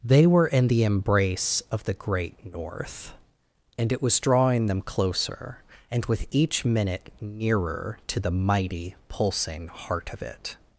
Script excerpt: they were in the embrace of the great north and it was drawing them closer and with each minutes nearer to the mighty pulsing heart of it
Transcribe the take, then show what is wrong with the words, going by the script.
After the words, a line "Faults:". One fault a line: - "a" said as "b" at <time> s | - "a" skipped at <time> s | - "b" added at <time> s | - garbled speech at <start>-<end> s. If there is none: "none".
they were in the embrace of the great north and it was drawing them closer and with each minute nearer to the mighty pulsing heart of it
Faults:
- "minutes" said as "minute" at 6.6 s